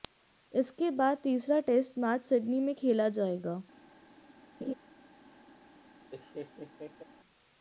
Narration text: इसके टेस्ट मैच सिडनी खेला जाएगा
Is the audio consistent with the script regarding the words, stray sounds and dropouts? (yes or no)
no